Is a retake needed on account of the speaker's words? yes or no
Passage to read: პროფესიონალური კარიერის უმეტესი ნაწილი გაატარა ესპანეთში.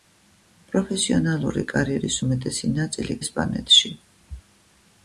yes